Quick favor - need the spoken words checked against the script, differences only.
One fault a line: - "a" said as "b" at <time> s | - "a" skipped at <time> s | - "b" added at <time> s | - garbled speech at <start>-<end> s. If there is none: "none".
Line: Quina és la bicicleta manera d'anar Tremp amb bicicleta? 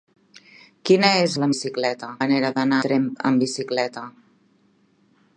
none